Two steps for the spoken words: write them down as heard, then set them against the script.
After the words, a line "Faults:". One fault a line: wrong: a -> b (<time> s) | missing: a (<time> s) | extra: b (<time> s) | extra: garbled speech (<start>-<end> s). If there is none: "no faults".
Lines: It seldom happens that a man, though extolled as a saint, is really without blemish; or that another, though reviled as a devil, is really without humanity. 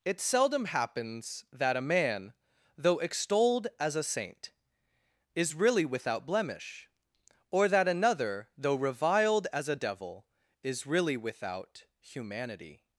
It seldom happens that a man, though extolled as a saint, is really without blemish; or that another, though reviled as a devil, is really without humanity.
Faults:
no faults